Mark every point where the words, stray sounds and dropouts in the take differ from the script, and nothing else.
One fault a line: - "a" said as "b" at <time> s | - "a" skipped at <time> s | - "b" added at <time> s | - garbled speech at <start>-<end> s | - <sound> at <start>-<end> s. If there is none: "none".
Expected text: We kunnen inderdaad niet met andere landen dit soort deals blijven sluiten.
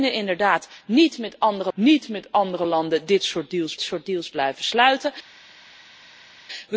- "niet met andere" added at 1.7 s
- "soort deals" added at 3.8 s